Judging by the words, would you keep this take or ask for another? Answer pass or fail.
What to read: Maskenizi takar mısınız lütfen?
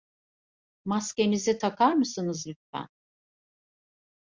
pass